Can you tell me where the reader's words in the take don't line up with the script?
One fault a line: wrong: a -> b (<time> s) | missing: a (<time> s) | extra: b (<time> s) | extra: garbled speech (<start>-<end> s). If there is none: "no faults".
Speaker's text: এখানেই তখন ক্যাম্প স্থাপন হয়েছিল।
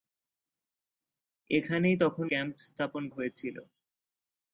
no faults